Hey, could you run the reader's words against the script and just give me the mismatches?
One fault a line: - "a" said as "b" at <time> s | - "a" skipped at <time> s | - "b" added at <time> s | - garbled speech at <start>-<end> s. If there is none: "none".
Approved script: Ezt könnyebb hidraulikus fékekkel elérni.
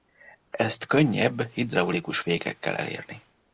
none